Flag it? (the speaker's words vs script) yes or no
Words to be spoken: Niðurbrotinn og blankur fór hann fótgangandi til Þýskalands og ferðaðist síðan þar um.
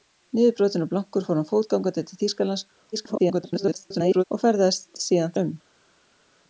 yes